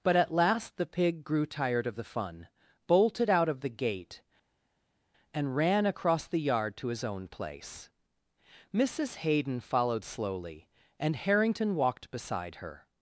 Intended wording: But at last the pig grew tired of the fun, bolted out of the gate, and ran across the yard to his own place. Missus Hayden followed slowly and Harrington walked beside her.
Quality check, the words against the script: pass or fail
pass